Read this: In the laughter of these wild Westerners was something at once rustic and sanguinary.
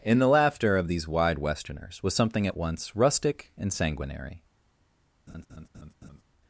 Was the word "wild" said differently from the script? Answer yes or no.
yes